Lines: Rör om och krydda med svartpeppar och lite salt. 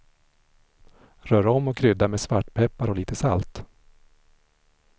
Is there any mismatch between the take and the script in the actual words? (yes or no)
no